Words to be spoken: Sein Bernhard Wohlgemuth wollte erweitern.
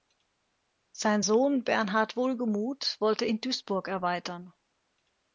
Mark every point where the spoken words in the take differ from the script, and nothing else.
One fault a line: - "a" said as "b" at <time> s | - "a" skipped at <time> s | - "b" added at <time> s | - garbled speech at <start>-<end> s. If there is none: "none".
- "Sohn" added at 1.2 s
- "in Duisburg" added at 3.2 s